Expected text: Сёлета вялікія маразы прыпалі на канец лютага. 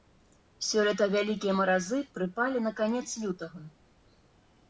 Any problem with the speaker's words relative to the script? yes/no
no